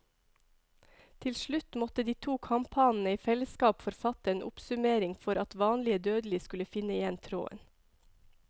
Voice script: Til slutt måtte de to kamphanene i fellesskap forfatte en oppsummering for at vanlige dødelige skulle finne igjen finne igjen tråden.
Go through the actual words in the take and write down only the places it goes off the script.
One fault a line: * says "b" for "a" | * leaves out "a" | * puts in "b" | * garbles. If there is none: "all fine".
* leaves out "finne igjen"